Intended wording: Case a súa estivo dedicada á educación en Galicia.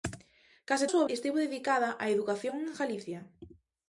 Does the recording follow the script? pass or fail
pass